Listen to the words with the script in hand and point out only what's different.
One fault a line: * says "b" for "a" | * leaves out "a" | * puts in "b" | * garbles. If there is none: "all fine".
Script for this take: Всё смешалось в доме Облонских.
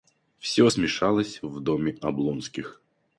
all fine